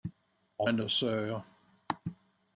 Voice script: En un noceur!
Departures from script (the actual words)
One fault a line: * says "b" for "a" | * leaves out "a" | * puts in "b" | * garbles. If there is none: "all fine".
all fine